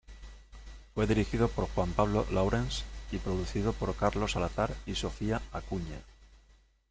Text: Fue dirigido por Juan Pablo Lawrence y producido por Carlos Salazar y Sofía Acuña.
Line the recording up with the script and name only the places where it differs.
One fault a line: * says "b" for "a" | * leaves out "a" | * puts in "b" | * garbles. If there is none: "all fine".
all fine